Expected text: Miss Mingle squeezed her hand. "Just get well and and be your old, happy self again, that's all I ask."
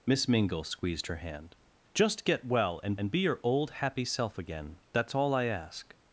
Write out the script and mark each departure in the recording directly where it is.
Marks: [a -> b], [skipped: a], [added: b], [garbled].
Miss Mingle squeezed her hand. "Just get well and and be your old, happy self again, that's all I ask."